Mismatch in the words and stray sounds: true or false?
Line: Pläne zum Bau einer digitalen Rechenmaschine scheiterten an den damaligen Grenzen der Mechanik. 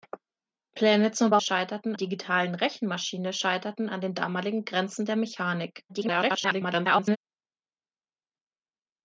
true